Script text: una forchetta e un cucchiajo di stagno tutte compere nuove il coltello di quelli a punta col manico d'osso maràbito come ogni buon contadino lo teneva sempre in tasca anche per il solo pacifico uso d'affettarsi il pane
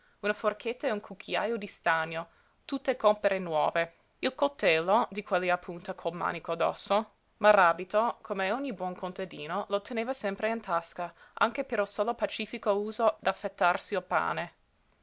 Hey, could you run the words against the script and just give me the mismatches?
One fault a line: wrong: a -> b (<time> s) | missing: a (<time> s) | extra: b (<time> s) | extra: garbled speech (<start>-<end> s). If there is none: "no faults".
no faults